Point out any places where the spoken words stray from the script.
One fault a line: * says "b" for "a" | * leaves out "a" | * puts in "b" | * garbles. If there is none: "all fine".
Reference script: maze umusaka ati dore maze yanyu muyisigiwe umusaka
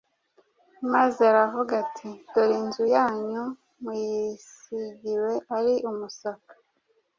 * says "aravuga" for "umusaka"
* says "inzu" for "maze"
* puts in "ari"